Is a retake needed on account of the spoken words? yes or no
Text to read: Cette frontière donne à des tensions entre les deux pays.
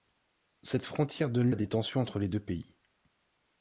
no